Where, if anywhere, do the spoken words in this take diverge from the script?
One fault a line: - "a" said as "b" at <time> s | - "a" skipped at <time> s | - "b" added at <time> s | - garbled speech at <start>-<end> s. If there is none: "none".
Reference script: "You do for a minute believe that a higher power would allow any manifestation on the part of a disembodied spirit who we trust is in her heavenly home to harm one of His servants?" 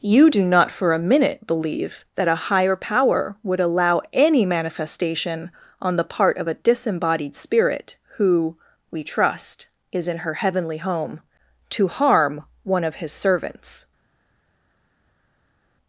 - "not" added at 0.4 s